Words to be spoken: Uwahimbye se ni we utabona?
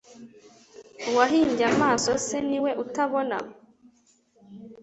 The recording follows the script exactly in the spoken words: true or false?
false